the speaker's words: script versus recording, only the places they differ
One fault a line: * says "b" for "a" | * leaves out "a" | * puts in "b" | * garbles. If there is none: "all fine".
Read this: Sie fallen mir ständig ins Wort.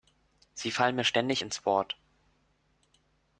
all fine